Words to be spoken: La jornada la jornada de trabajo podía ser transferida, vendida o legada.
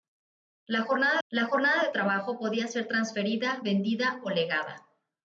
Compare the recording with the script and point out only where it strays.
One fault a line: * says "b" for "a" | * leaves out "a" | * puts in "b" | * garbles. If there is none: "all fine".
all fine